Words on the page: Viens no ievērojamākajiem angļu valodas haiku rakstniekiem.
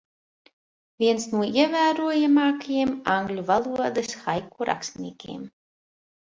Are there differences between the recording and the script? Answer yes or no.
no